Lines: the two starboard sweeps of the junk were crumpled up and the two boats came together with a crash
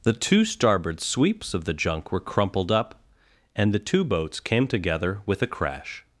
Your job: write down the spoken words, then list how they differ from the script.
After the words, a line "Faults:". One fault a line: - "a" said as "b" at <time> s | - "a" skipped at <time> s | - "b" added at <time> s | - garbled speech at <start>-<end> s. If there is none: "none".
the two starboard sweeps of the junk were crumpled up and the two boats came together with a crash
Faults:
none